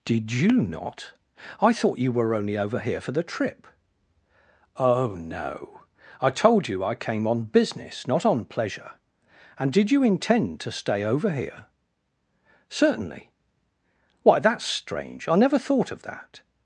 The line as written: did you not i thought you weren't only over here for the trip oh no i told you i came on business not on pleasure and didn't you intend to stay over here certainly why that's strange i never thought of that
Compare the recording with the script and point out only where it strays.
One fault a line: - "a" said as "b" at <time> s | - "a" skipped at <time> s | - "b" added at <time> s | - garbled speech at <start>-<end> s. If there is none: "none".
- "weren't" said as "were" at 2.1 s
- "didn't" said as "did" at 9.7 s